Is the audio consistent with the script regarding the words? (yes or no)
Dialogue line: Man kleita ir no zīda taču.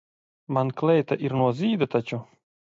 yes